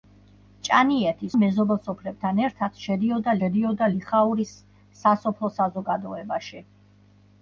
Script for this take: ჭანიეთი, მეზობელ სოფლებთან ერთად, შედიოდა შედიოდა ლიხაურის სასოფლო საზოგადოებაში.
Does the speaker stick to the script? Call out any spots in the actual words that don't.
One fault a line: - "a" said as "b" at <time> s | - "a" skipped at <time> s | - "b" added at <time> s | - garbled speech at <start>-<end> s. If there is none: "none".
none